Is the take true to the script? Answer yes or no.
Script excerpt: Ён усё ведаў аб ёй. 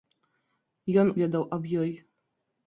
no